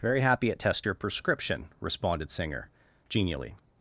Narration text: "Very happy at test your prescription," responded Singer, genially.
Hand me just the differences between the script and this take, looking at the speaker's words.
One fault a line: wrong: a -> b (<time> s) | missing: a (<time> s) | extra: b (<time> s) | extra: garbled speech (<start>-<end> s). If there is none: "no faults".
no faults